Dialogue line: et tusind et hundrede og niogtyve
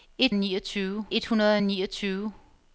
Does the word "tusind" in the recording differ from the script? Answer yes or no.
yes